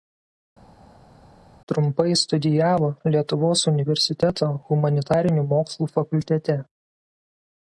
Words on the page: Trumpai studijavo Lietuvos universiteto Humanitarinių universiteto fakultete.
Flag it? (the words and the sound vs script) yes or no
yes